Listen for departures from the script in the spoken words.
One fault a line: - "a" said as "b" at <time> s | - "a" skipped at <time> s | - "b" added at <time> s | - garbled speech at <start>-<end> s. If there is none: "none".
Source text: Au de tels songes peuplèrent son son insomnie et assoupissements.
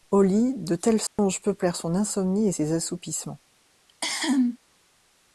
- "lit" added at 0.2 s
- "son" skipped at 1.9 s
- "ses" added at 2.5 s